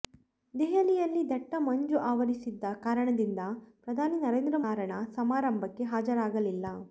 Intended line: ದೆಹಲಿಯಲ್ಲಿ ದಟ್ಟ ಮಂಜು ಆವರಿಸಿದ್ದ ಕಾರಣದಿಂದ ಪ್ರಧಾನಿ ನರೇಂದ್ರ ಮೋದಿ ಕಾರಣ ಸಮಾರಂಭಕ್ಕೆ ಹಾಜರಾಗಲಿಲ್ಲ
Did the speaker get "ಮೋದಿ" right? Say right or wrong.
wrong